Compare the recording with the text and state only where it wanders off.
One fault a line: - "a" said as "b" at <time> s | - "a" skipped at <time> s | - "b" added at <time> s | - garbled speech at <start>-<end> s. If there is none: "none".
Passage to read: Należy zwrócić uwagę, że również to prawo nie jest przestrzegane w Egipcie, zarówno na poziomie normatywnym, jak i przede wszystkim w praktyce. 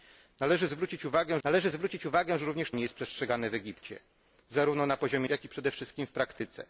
- "należy zwrócić uwagę" added at 1.4 s
- "to prawo" skipped at 2.7 s
- "normatywnym" skipped at 5.3 s